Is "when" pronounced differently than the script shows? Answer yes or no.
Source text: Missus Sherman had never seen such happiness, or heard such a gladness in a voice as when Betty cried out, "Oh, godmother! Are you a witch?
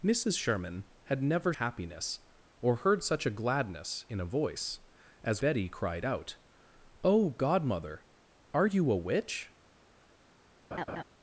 yes